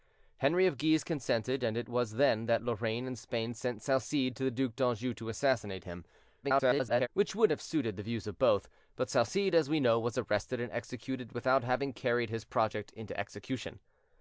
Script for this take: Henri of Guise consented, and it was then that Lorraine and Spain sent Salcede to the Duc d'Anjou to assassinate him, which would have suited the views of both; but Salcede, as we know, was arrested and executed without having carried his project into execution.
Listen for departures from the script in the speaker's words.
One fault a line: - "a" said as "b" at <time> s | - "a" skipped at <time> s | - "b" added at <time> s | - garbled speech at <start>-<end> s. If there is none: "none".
- garbled speech at 6.4-7.1 s